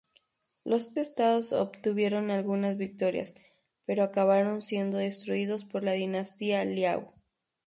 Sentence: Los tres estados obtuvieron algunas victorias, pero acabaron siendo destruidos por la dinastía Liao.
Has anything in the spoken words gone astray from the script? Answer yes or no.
yes